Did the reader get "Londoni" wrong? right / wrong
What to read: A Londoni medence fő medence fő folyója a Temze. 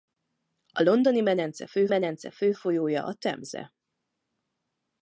right